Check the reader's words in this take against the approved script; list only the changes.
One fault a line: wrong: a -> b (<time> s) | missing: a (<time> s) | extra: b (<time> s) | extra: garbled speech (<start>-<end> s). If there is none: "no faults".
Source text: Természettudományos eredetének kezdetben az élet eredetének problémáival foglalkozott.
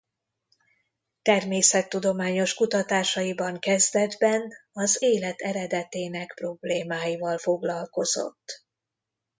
wrong: eredetének -> kutatásaiban (2.5 s)